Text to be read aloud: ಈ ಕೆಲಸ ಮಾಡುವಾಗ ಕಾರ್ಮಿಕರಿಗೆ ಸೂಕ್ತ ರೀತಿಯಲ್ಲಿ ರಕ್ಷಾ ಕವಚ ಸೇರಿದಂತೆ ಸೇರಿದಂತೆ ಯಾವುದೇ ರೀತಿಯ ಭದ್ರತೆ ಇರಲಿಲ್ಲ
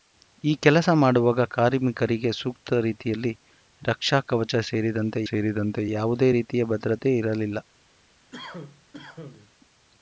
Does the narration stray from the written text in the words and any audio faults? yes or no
yes